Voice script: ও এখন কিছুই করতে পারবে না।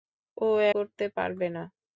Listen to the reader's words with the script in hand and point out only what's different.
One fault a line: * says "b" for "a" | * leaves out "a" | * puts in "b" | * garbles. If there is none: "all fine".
* leaves out "এখন কিছুই"